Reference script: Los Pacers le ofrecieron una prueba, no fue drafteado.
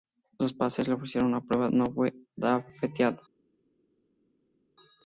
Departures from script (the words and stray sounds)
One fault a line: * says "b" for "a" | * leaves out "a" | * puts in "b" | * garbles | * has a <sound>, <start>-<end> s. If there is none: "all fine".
all fine